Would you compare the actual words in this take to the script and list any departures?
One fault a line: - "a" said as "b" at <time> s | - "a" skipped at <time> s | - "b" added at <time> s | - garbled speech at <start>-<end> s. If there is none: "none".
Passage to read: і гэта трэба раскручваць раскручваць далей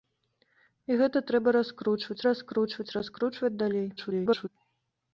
- "раскручваць" added at 3.0 s
- garbled speech at 4.0-4.5 s